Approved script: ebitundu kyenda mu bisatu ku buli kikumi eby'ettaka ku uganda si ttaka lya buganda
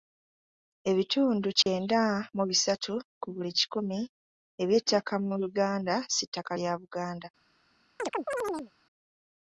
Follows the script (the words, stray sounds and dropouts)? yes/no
no